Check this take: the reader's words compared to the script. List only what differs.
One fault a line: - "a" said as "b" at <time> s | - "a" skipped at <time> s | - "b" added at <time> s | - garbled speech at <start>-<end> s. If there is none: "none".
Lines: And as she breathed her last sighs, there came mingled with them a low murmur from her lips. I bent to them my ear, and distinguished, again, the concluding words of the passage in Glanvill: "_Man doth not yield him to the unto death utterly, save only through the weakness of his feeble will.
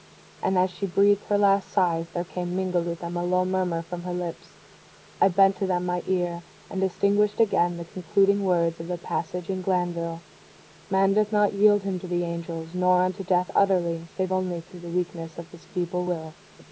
- "angels nor" added at 12.2 s